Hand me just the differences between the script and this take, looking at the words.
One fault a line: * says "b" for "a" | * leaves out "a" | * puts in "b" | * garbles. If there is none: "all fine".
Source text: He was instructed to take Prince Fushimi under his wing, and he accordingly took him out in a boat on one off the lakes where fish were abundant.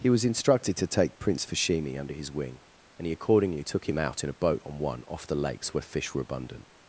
all fine